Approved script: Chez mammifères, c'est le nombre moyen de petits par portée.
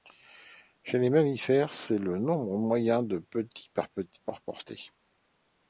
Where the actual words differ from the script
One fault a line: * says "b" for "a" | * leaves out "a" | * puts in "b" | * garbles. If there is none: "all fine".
* puts in "les"